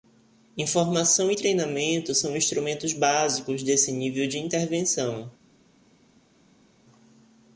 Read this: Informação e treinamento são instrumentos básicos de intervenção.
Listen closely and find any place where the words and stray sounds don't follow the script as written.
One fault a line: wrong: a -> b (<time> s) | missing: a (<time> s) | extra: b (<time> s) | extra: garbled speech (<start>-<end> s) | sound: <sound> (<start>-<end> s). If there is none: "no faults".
extra: desse nível (3.6 s)